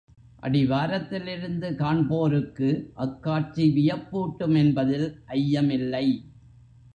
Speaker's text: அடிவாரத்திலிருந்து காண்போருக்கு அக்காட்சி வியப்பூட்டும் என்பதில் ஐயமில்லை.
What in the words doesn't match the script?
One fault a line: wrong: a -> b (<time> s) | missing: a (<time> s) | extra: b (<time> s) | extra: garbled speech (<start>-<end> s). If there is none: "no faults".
no faults